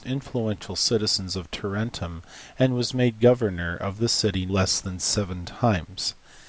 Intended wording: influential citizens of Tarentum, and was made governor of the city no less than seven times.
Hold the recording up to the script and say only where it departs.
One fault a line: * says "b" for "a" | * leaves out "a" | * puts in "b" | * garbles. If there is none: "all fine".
* leaves out "no"